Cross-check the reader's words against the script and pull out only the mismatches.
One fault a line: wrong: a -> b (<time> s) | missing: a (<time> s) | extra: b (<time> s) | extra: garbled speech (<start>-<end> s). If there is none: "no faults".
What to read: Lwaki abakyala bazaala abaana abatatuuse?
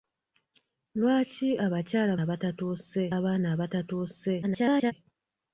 wrong: bazaala -> abatatuuse (2.2 s)
extra: garbled speech (4.4-4.9 s)